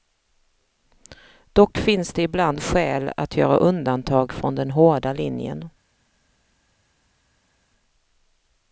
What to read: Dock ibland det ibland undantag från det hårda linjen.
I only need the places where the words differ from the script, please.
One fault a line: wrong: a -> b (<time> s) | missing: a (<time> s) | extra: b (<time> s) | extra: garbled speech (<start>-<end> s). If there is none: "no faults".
wrong: ibland -> finns (1.8 s)
extra: skäl att göra (2.6 s)
wrong: det -> den (4.5 s)